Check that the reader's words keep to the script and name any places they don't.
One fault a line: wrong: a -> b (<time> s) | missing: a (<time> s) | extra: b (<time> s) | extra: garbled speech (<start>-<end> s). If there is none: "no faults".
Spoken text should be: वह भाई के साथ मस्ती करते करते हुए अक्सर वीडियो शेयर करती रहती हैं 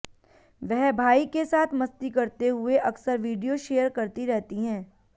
missing: करते (2.5 s)